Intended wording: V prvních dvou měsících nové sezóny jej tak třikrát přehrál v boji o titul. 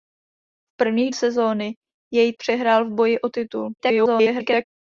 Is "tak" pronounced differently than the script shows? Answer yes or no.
yes